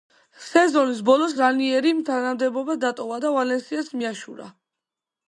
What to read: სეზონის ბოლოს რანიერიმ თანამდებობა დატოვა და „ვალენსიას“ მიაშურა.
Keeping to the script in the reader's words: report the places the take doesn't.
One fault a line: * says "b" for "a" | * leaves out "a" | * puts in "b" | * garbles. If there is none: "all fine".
all fine